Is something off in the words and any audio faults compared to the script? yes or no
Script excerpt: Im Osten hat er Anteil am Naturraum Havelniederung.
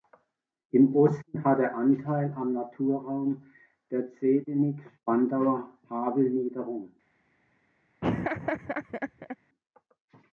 yes